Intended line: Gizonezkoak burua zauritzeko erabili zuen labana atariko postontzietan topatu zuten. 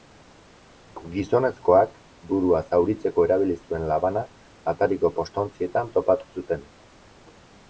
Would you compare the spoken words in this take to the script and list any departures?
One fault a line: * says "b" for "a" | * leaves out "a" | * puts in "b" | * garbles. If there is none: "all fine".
all fine